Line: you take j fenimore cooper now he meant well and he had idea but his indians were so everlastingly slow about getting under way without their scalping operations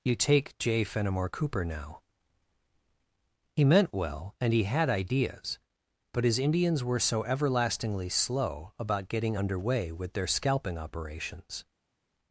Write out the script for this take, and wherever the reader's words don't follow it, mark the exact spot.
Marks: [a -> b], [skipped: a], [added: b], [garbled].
you take j fenimore cooper now he meant well and he had [idea -> ideas] but his indians were so everlastingly slow about getting under way [without -> with] their scalping operations